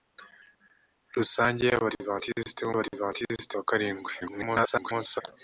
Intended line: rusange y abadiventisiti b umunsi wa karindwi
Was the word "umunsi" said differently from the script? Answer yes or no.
yes